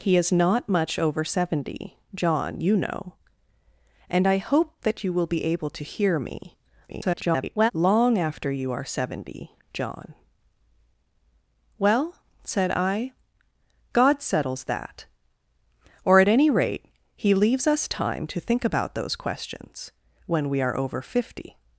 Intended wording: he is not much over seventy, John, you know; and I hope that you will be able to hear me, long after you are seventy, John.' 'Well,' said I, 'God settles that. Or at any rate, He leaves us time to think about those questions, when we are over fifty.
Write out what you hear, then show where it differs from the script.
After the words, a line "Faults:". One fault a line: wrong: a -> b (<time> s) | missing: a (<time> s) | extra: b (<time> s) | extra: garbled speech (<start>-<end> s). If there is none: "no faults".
he is not much over seventy, John, you know; and I hope that you will be able to hear me, [garbled] long after you are seventy, John.' 'Well,' said I, 'God settles that. Or at any rate, He leaves us time to think about those questions, when we are over fifty.
Faults:
extra: garbled speech (6.9-7.7 s)